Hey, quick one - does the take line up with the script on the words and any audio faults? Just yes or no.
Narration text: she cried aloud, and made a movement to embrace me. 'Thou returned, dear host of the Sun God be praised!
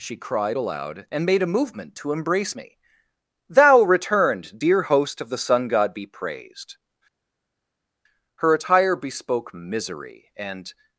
no